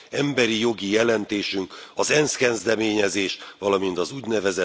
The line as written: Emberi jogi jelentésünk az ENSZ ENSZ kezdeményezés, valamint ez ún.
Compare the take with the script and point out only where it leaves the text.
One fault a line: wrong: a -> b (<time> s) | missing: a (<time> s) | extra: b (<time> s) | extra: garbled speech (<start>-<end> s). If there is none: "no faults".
missing: ENSZ (2.4 s)
wrong: ez -> az (4.0 s)